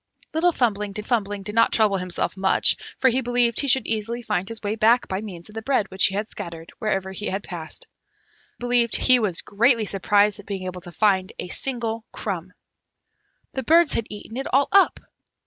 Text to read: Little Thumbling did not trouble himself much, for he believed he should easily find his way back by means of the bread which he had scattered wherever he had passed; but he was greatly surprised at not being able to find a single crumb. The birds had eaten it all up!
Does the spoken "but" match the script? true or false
false